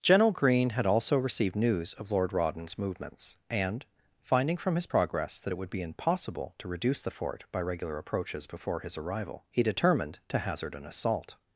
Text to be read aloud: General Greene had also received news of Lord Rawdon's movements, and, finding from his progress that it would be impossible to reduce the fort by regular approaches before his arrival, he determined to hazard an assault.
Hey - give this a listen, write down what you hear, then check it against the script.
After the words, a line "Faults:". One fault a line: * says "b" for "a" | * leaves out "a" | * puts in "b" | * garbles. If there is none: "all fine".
General Greene had also received news of Lord Rawdon's movements, and, finding from his progress that it would be impossible to reduce the fort by regular approaches before his arrival, he determined to hazard an assault.
Faults:
all fine